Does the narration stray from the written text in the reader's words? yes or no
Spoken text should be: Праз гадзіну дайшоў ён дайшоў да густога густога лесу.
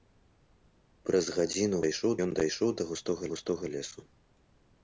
no